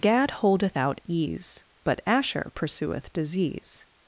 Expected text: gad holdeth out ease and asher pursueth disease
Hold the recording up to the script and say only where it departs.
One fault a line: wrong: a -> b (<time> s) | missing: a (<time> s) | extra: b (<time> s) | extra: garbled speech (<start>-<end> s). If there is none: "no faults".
wrong: and -> but (1.8 s)